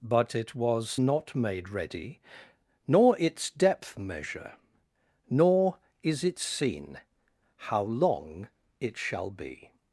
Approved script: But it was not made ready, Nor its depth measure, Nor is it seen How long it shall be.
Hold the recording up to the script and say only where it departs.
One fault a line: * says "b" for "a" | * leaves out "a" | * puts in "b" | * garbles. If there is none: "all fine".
all fine